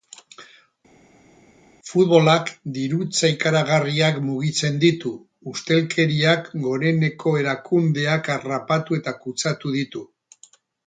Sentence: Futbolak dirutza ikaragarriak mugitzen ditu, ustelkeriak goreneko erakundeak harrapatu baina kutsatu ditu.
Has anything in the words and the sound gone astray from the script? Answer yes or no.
yes